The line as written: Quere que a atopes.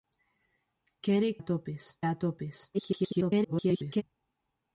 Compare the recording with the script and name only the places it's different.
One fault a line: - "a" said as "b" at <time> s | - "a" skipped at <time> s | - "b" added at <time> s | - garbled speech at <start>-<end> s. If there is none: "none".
- "que" said as "atopes" at 1.4 s
- garbled speech at 2.7-4.0 s